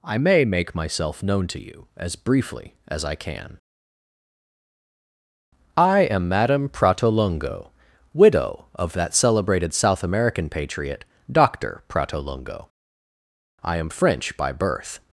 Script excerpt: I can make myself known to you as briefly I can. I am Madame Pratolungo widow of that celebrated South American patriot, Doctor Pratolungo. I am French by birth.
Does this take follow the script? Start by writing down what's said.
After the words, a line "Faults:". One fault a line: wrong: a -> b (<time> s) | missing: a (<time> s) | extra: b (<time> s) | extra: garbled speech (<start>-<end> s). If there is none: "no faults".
I may make myself known to you as briefly as I can. I am Madame Pratolungo widow of that celebrated South American patriot, Doctor Pratolungo. I am French by birth.
Faults:
wrong: can -> may (0.2 s)
extra: as (2.9 s)